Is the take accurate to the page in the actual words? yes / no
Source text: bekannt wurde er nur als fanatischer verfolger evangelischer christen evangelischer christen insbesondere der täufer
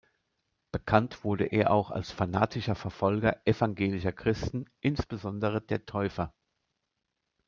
no